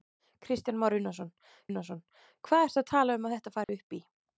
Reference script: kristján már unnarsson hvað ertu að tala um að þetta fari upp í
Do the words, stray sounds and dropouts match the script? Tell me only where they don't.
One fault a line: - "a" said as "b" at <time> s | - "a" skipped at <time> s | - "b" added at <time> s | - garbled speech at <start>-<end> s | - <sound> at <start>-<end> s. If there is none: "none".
- "unnarsson" added at 1.7 s
- dropout at 3.6-3.7 s